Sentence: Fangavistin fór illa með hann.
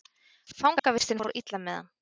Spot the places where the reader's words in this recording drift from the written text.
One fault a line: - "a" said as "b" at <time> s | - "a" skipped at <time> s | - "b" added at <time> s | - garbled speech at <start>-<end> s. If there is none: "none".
none